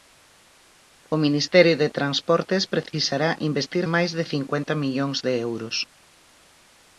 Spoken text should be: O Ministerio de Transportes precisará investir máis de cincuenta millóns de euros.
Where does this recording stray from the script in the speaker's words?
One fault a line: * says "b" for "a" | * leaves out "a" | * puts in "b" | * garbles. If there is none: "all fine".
all fine